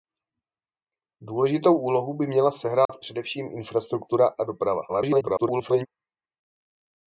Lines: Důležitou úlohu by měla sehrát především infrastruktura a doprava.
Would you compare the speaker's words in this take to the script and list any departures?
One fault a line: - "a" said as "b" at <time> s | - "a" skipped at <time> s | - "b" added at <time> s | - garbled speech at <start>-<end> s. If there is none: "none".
- garbled speech at 4.9-5.9 s